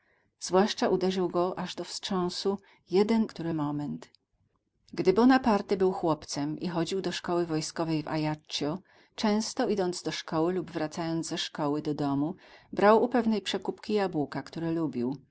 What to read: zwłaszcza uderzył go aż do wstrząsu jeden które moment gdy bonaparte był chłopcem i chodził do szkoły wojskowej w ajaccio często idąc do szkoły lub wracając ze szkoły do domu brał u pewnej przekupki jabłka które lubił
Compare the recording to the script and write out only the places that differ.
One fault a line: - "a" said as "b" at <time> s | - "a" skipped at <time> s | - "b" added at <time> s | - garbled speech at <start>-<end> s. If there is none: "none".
none